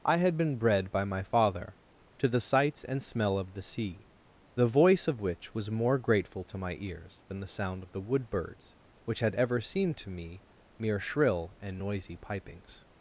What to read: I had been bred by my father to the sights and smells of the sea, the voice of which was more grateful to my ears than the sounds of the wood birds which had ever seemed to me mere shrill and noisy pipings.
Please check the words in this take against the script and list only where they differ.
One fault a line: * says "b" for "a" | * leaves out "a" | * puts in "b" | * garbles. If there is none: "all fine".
* says "smell" for "smells"
* says "sound" for "sounds"